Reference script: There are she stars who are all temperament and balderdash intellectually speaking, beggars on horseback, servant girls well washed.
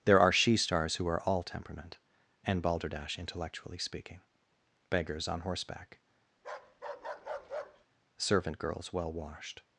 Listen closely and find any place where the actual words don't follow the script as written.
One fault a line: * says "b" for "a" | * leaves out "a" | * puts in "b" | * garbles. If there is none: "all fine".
all fine